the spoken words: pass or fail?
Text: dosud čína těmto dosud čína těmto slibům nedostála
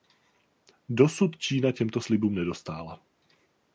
fail